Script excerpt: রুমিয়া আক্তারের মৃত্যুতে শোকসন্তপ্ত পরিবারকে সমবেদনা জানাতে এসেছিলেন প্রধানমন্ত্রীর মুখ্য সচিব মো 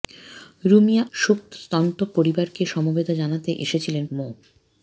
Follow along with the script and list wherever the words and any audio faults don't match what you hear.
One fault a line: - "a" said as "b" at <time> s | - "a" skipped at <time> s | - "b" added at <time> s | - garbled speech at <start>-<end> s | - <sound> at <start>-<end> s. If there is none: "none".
- "আক্তারের মৃত্যুতে" skipped at 1.0 s
- "প্রধানমন্ত্রীর মুখ্য সচিব" skipped at 4.0 s